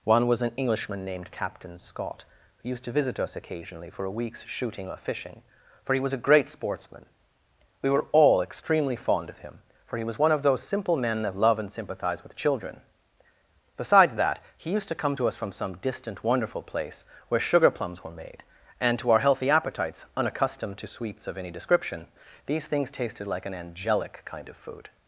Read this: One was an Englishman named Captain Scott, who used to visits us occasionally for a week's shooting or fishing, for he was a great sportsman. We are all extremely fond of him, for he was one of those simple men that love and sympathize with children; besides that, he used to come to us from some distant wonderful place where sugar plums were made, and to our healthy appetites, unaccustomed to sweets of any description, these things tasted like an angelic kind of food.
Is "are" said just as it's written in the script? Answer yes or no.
no